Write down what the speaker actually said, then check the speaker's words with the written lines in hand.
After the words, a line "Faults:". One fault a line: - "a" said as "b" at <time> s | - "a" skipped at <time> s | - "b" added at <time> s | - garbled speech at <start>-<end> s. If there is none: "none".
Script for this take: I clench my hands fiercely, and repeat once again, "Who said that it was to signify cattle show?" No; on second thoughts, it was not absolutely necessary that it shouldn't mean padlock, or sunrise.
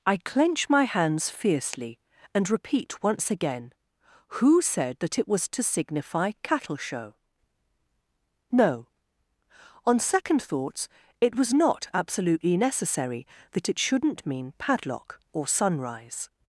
I clench my hands fiercely, and repeat once again, "Who said that it was to signify cattle show?" No; on second thoughts, it was not absolutely necessary that it shouldn't mean padlock, or sunrise.
Faults:
none